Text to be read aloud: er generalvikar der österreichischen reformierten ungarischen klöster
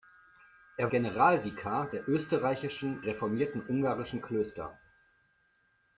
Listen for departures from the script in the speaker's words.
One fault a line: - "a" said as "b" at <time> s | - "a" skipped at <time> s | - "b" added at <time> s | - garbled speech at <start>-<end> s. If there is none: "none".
none